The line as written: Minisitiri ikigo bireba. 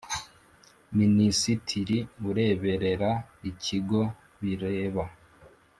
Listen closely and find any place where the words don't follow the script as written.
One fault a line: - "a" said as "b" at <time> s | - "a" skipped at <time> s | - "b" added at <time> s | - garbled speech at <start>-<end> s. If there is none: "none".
- "ureberera" added at 2.3 s